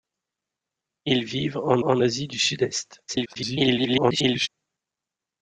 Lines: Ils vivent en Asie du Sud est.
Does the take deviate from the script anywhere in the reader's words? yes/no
yes